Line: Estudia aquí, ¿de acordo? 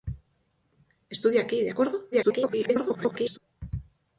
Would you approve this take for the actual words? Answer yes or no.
no